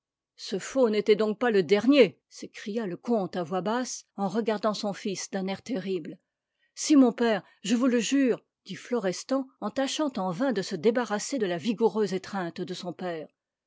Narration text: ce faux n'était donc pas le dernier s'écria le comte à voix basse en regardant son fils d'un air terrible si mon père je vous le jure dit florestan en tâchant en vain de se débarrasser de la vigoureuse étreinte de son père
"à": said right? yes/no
yes